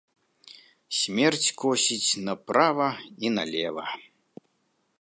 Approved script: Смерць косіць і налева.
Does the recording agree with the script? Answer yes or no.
no